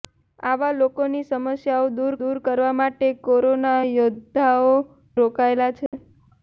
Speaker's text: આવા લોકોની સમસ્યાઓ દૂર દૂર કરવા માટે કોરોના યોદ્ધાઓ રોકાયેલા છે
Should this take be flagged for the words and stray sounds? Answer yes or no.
yes